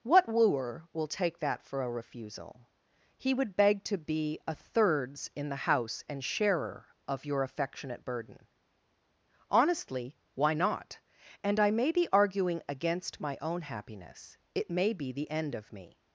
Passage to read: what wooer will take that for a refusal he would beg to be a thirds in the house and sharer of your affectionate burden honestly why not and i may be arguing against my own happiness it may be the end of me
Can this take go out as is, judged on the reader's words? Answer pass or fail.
pass